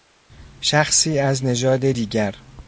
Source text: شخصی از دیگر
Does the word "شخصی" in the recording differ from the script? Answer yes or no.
no